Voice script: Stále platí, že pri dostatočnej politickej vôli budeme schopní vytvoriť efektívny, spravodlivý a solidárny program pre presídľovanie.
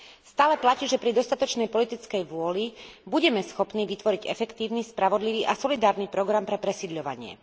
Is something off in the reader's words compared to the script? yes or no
no